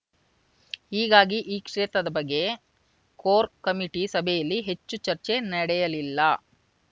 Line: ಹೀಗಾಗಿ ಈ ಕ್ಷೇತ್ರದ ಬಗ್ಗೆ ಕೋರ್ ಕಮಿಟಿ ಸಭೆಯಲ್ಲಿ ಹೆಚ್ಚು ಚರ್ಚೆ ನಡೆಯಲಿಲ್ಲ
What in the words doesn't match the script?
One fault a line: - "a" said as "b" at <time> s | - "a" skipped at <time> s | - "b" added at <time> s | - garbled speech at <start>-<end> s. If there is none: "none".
none